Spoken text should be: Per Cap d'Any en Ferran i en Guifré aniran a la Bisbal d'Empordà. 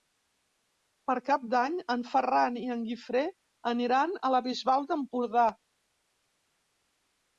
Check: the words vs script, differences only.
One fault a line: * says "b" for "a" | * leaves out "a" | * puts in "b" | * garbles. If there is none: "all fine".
all fine